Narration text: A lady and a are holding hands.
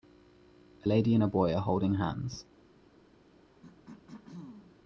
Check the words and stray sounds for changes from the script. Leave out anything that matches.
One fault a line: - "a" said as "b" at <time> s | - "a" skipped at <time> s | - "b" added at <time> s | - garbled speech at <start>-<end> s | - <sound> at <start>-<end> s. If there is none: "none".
- "boy" added at 1.3 s
- throat clearing at 3.6-4.8 s